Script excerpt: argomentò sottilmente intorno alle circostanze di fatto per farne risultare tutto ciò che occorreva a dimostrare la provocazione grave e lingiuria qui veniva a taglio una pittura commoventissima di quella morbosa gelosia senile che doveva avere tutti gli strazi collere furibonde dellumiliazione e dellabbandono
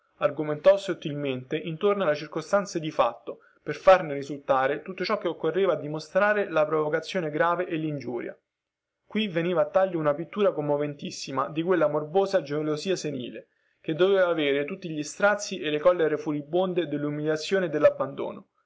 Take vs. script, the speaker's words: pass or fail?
fail